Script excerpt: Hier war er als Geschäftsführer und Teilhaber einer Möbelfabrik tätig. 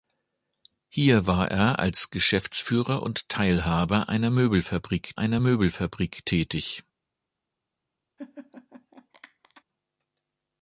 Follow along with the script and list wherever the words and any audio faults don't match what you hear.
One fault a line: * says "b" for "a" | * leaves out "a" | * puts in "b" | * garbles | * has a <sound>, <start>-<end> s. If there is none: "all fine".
* puts in "einer Möbelfabrik"
* has a laugh, 8.2-9.6 s